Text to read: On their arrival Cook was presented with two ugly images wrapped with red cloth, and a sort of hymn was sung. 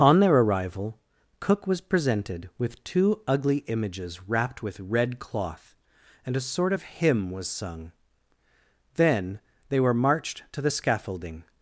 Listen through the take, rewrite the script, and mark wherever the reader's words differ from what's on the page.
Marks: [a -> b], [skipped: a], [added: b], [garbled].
On their arrival Cook was presented with two ugly images wrapped with red cloth, and a sort of hymn was sung. [added: Then they were marched to the scaffolding]